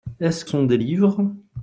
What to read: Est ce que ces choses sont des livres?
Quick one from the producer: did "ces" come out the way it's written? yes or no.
no